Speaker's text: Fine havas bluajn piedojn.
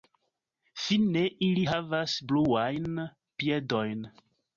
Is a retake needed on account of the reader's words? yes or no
yes